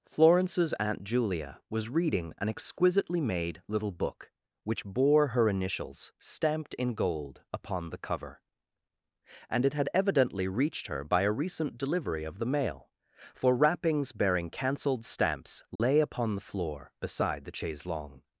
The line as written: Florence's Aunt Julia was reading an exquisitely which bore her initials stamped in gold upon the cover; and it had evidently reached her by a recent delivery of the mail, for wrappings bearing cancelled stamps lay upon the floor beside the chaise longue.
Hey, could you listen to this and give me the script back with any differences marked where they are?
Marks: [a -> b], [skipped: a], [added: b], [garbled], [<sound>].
Florence's Aunt Julia was reading an exquisitely [added: made little book] which bore her initials stamped in gold upon the cover; and it had evidently reached her by a recent delivery of the mail, for wrappings bearing cancelled stamps lay [dropout] upon the floor beside the chaise longue.